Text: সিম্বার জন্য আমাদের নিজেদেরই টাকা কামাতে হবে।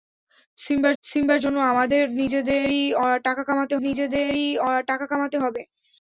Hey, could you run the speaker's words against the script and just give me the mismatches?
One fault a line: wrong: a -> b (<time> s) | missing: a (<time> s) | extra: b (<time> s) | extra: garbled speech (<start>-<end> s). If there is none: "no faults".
extra: সিম্বার (1.0 s)
extra: নিজেদেরই টাকা কামাতে (3.8 s)